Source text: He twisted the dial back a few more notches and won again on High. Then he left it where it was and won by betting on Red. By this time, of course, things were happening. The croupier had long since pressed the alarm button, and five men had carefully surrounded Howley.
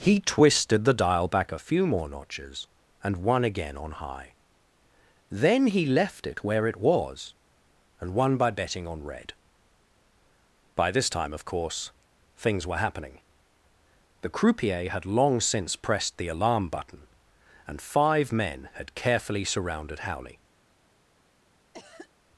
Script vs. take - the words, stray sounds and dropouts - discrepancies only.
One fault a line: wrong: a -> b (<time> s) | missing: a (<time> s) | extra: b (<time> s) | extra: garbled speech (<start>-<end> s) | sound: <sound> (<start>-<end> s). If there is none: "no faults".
sound: cough (21.7-22.1 s)